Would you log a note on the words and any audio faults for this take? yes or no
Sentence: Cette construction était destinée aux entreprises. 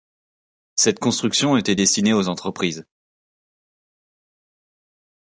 no